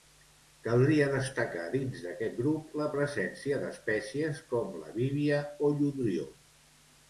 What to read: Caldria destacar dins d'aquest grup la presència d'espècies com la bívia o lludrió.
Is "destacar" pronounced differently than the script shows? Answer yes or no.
no